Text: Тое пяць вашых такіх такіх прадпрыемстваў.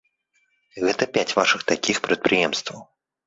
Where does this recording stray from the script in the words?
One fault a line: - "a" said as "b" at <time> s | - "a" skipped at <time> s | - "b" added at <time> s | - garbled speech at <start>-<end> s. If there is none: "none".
- "Тое" said as "Гэта" at 0.8 s
- "такіх" skipped at 2.0 s